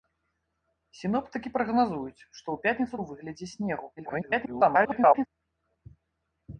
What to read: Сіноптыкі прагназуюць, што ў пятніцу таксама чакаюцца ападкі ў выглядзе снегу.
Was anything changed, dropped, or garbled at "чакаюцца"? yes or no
yes